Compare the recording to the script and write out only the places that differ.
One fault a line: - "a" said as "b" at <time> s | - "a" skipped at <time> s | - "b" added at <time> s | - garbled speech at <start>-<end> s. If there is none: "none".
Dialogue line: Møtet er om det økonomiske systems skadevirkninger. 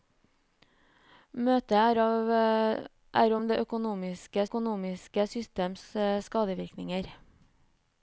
- "økonomiske" added at 4.5 s